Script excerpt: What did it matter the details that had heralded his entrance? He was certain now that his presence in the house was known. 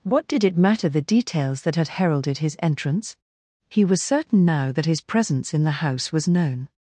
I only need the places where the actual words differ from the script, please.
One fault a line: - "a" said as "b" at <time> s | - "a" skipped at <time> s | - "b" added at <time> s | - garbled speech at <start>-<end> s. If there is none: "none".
none